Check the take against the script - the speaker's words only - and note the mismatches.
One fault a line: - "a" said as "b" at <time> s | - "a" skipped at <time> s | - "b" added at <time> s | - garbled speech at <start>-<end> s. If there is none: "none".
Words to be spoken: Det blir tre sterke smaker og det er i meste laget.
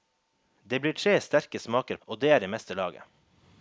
none